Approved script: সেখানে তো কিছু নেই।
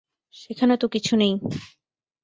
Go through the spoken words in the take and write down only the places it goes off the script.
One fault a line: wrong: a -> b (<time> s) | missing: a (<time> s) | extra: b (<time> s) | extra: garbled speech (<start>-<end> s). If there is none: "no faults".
no faults